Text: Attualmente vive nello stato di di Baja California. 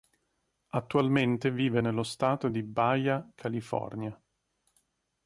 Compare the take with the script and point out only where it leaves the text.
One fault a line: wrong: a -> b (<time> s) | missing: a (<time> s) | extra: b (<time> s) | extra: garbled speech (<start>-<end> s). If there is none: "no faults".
missing: di (2.6 s)